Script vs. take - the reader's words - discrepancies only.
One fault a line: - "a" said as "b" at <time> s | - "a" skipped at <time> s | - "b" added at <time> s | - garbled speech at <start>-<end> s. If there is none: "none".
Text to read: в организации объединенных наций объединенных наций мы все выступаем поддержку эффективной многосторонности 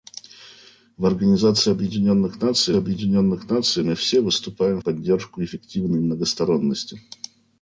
none